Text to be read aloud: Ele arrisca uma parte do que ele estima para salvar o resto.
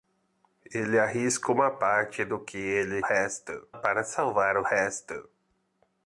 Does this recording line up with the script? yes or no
no